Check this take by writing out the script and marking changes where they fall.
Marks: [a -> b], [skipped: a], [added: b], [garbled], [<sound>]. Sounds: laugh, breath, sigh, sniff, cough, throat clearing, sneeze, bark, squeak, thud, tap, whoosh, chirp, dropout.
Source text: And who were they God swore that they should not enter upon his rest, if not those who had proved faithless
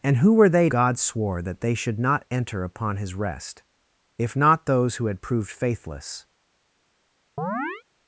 And who were they God swore that they should not enter upon his rest, if not those who had proved faithless [chirp]